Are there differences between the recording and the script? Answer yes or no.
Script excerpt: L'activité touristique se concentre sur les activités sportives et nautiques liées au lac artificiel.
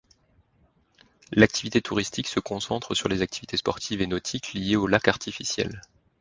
no